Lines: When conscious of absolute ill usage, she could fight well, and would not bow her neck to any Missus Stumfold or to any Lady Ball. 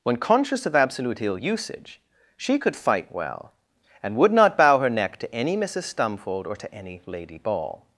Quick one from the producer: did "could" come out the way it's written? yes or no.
yes